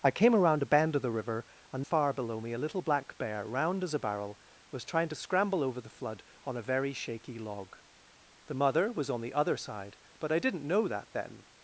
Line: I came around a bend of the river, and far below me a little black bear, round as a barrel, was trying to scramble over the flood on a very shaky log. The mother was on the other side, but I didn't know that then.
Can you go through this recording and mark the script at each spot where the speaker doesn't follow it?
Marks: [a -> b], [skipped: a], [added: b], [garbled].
I came around a bend of the river, and far below me a little black bear, round as a barrel, was trying to scramble over the flood on a very shaky log. The mother was on the other side, but I didn't know that then.